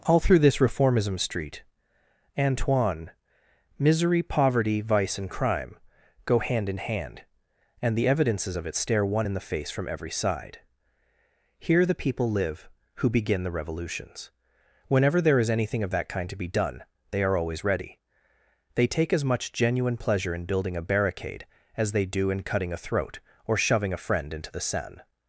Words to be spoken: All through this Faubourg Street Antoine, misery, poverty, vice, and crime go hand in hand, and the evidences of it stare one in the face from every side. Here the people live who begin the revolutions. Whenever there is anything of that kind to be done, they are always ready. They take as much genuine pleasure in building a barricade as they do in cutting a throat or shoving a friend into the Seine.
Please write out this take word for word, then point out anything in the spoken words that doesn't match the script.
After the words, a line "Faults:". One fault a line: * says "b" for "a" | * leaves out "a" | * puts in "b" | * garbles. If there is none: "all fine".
All through this Reformism Street Antoine, misery, poverty, vice, and crime go hand in hand, and the evidences of it stare one in the face from every side. Here the people live who begin the revolutions. Whenever there is anything of that kind to be done, they are always ready. They take as much genuine pleasure in building a barricade as they do in cutting a throat or shoving a friend into the Seine.
Faults:
* says "Reformism" for "Faubourg"